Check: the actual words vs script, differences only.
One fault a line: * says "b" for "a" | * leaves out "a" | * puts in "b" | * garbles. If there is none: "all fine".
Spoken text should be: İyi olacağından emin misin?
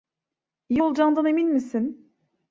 all fine